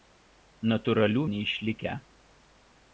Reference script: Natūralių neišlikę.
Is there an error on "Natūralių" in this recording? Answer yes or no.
no